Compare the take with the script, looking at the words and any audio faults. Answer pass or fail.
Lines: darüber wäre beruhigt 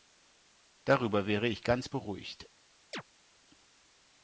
fail